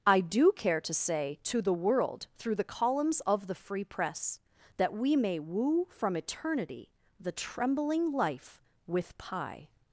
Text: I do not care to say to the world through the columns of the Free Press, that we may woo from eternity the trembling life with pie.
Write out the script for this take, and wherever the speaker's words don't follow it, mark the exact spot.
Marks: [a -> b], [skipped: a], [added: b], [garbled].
I do [skipped: not] care to say to the world through the columns of the Free Press, that we may woo from eternity the trembling life with pie.